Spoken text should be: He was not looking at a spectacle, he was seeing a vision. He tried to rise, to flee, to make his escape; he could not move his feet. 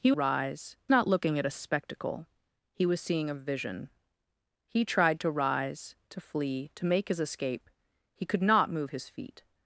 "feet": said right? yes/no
yes